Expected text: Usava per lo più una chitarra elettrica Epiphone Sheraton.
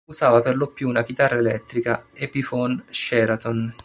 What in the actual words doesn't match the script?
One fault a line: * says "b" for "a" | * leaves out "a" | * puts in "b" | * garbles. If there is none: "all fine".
all fine